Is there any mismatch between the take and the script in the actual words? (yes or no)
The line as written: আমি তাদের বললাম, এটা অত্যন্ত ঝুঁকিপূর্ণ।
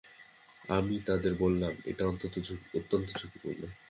no